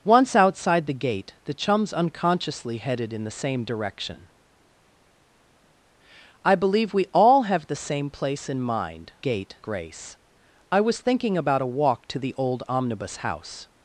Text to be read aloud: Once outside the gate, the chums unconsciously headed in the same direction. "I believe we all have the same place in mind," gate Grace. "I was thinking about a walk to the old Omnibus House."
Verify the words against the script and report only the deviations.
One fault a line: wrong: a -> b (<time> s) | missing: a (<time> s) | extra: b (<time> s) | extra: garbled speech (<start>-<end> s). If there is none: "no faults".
no faults